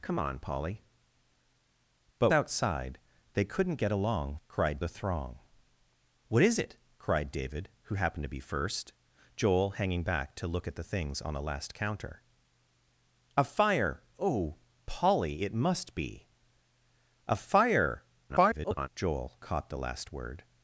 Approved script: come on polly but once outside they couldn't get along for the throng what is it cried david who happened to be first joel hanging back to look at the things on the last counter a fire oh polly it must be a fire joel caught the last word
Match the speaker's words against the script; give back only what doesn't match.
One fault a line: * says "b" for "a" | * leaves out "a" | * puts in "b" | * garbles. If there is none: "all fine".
* leaves out "once"
* says "cried" for "for"
* garbles